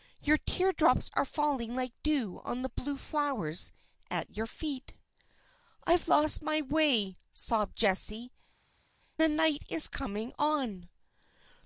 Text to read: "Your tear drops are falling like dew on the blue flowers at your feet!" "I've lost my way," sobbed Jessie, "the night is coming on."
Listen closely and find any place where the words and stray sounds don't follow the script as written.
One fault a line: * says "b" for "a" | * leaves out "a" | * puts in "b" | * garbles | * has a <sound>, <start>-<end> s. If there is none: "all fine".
all fine